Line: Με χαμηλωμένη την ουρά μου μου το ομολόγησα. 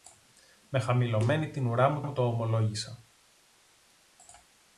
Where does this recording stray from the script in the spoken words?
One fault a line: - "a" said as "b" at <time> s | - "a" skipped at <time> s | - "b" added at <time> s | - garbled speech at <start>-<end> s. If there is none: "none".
none